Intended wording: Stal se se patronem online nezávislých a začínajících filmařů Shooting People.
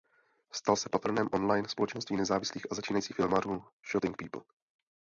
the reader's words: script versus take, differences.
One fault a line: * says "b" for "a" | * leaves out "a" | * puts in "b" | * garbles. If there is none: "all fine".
* leaves out "se"
* puts in "společenství"